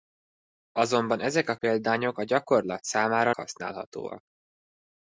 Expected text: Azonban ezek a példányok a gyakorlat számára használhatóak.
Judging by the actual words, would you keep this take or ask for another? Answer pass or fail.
pass